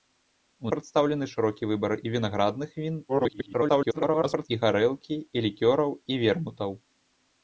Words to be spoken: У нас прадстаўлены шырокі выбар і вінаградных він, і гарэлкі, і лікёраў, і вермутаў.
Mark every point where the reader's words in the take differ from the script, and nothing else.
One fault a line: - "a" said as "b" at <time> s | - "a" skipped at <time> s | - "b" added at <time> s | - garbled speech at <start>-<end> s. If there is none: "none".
- "нас" skipped at 0.7 s
- garbled speech at 3.1-4.5 s